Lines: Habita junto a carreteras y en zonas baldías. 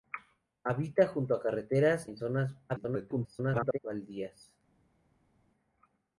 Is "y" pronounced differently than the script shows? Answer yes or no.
yes